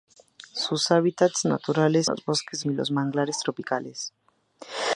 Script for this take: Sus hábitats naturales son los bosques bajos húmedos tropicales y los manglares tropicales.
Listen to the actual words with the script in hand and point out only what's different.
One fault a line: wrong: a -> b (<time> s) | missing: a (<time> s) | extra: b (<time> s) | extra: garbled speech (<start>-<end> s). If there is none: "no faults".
missing: son (2.1 s)
missing: bajos húmedos tropicales (2.6 s)